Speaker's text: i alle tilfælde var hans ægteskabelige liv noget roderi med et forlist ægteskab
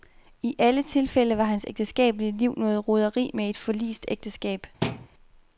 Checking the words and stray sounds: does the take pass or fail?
fail